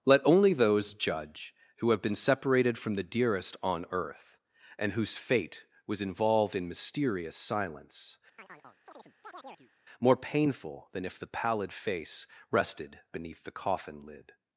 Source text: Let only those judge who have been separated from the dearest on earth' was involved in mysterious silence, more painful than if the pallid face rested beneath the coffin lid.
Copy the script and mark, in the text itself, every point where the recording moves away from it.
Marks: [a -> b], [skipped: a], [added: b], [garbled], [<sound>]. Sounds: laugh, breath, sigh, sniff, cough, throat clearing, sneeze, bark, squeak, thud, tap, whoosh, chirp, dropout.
Let only those judge who have been separated from the dearest on earth' [added: and whose fate] was involved in mysterious silence, [chirp] more painful than if the pallid face rested beneath the coffin lid.